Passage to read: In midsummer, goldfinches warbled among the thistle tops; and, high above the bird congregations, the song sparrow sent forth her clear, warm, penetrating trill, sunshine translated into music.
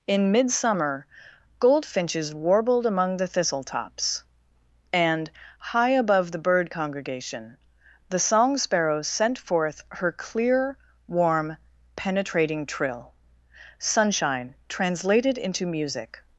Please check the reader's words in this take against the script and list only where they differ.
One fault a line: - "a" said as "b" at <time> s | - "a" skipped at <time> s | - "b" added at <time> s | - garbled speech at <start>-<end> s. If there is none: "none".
- "congregations" said as "congregation" at 6.7 s